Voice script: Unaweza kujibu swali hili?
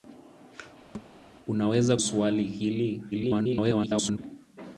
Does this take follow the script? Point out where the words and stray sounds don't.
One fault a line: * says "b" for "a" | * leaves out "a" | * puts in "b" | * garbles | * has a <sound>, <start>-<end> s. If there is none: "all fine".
* has a thud, 0.9-1.1 s
* leaves out "kujibu"
* garbles